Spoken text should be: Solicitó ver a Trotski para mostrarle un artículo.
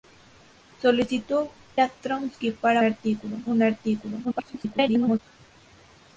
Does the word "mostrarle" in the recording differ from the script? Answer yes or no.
yes